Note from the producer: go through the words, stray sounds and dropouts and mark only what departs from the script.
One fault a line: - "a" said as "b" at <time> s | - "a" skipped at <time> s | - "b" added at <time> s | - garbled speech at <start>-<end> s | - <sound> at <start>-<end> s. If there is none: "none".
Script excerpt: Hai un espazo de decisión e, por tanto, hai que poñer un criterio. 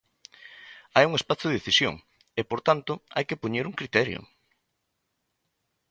none